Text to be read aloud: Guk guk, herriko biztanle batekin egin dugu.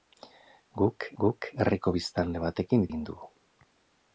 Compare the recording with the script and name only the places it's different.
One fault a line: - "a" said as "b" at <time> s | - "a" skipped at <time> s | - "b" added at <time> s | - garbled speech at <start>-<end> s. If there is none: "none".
none